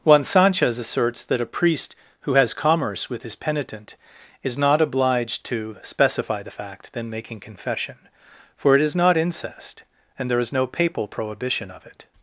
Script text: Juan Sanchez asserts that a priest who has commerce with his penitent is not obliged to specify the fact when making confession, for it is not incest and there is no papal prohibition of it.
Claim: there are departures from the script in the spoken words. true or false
true